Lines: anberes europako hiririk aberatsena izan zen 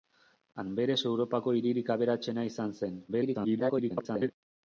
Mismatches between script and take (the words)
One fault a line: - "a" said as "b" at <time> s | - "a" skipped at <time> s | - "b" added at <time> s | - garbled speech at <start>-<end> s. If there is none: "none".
- garbled speech at 3.1-4.3 s